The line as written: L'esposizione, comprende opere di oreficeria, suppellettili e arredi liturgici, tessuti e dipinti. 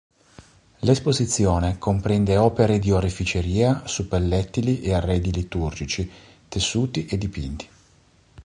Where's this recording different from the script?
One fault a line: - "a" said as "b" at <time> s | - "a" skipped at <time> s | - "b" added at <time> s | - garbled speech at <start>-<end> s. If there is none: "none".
none